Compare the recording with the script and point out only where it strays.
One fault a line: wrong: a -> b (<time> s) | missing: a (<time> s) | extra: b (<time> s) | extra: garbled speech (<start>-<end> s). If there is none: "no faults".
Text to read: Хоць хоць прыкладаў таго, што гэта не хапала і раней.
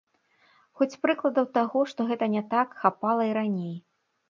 missing: хоць (1.0 s)
extra: так (2.6 s)